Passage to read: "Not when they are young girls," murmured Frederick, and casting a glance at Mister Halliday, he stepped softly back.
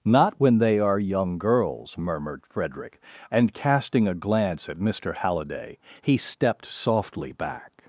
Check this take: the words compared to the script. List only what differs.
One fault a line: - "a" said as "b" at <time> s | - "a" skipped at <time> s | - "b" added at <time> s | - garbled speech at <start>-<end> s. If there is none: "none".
none